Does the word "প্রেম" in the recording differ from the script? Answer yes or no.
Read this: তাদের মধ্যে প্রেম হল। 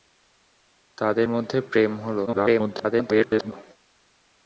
no